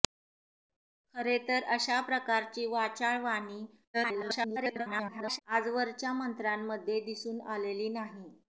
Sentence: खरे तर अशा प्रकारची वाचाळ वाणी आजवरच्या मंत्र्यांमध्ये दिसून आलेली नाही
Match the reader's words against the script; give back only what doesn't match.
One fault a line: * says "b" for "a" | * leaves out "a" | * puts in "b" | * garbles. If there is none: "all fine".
* garbles